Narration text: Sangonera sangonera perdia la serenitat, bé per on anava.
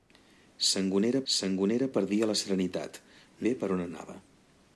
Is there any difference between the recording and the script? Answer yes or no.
no